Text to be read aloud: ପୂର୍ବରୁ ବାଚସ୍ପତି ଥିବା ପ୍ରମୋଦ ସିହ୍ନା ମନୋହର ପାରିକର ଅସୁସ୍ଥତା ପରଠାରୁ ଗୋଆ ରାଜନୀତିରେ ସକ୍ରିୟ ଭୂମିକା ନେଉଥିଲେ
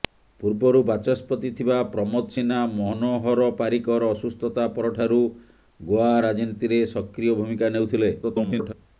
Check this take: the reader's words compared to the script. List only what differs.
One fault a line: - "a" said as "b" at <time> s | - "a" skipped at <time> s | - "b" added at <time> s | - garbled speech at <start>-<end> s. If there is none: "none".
- garbled speech at 8.2-8.7 s